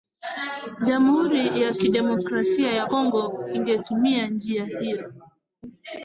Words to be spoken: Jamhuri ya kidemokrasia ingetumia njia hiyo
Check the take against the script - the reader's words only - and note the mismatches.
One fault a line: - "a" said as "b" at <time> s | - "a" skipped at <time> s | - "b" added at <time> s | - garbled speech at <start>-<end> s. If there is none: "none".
- "ya Kongo" added at 2.7 s